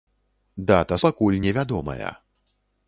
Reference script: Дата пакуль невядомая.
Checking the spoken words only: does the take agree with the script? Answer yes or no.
yes